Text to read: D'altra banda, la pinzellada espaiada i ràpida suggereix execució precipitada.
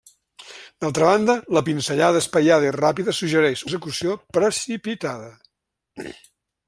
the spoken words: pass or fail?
pass